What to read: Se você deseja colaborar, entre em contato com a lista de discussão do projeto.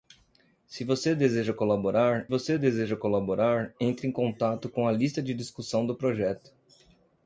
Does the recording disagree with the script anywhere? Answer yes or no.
yes